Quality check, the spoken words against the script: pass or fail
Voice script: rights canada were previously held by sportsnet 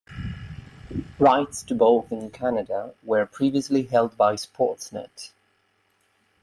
fail